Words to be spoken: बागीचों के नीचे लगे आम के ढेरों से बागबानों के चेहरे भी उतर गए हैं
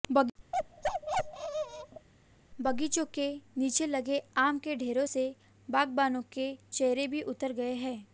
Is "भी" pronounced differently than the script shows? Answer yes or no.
no